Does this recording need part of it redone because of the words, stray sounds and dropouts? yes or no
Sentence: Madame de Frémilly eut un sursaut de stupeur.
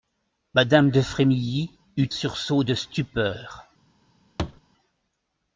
yes